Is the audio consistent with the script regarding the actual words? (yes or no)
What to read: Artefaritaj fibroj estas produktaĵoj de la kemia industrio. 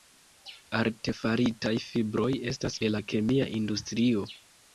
no